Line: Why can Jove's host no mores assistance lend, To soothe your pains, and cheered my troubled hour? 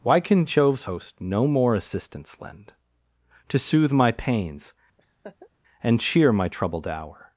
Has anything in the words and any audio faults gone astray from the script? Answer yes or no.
yes